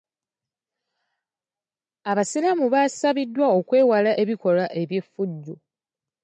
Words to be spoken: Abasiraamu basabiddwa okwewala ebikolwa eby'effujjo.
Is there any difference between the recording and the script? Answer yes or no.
no